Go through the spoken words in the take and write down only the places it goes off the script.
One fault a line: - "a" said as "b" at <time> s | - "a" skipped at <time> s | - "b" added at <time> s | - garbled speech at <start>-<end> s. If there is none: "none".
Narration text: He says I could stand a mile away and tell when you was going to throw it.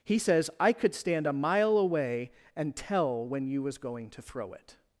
none